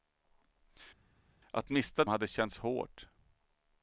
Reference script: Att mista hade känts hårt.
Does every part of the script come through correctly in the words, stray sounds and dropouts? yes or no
yes